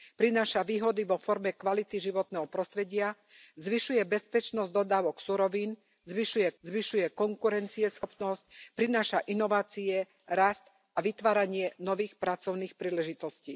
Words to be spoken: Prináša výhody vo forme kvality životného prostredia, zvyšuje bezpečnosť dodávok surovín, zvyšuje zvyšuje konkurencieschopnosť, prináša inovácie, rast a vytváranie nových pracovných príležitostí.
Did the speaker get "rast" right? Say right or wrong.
right